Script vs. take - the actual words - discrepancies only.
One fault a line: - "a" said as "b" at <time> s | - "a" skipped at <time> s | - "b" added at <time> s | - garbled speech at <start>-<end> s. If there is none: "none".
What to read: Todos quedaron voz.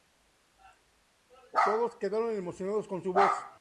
- "emocionados con su" added at 2.3 s